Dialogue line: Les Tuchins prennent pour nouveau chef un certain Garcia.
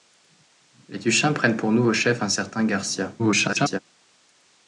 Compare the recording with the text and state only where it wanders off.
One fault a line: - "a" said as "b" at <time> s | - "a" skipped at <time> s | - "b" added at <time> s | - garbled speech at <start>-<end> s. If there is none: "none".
- garbled speech at 3.2-3.8 s